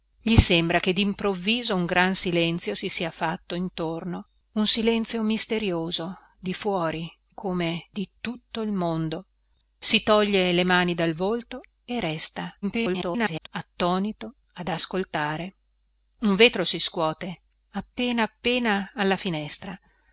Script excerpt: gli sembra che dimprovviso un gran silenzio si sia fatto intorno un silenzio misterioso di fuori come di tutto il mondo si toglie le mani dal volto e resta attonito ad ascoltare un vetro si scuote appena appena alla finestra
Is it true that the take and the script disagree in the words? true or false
true